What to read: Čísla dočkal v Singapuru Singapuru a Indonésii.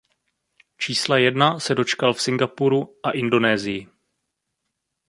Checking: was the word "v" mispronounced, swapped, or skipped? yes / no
no